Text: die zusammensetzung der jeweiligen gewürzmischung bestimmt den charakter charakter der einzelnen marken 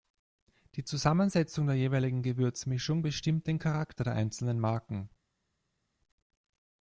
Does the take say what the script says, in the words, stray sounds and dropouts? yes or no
no